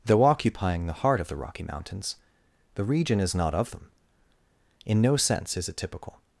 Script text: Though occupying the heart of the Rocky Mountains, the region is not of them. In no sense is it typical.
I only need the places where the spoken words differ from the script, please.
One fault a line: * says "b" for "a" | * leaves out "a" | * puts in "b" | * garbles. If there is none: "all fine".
all fine